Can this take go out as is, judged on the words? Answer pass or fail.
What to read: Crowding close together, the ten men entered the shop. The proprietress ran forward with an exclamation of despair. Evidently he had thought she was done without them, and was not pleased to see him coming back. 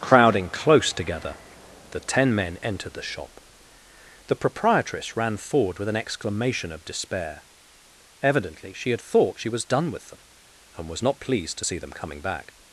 fail